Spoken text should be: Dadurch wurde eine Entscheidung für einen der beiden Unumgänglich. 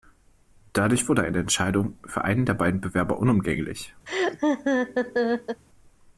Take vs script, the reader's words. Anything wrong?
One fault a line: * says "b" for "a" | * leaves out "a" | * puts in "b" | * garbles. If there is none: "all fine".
* puts in "Bewerber"